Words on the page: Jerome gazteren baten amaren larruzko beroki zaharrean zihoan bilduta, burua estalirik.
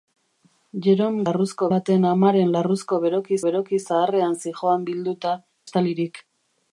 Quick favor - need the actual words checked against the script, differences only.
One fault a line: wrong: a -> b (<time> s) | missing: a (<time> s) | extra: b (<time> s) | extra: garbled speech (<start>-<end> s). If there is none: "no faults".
wrong: gazteren -> larruzko (1.3 s)
extra: beroki (3.5 s)
missing: burua (5.4 s)